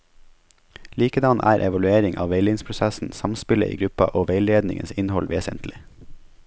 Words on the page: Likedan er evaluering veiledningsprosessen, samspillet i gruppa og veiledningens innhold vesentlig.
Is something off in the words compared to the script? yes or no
yes